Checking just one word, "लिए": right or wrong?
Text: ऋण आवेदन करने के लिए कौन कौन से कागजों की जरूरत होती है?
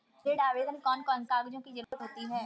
wrong